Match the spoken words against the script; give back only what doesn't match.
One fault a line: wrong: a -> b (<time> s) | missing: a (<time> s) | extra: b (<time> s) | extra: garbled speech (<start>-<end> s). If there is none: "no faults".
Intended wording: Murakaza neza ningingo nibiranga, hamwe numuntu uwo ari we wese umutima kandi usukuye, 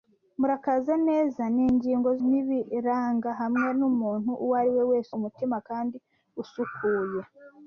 no faults